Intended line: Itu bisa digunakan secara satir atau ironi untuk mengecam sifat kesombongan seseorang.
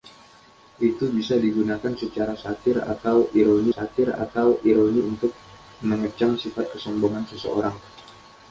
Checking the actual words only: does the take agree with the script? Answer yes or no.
no